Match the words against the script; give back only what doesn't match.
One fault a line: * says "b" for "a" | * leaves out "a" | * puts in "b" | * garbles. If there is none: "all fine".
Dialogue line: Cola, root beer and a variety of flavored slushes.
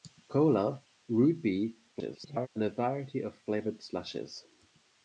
* garbles